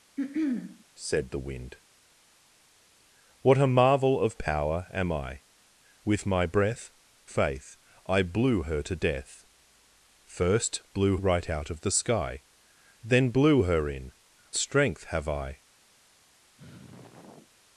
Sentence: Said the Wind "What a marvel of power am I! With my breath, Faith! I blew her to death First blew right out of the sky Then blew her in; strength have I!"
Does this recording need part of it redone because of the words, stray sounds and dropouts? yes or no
yes